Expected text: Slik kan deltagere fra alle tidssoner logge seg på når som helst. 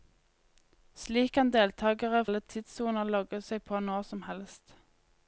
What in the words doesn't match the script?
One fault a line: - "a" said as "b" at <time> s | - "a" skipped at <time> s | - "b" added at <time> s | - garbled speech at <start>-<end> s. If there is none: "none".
- "fra" skipped at 2.2 s